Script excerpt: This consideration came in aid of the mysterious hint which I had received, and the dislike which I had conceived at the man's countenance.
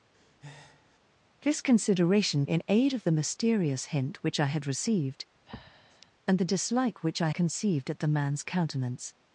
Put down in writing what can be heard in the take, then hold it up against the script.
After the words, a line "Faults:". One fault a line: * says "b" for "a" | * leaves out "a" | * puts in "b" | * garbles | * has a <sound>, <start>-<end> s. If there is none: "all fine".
This consideration in aid of the mysterious hint which I had received, and the dislike which I conceived at the man's countenance.
Faults:
* has a breath, 0.1-1.0 s
* leaves out "came"
* has a breath, 5.5-6.1 s
* leaves out "had"